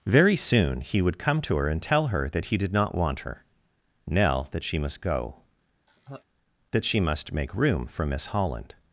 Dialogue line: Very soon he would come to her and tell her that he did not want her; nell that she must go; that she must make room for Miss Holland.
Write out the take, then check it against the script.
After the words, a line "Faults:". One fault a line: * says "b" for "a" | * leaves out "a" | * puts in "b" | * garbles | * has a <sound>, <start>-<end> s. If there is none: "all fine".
Very soon he would come to her and tell her that he did not want her; nell that she must go; that she must make room for Miss Holland.
Faults:
* has a laugh, 5.9-6.2 s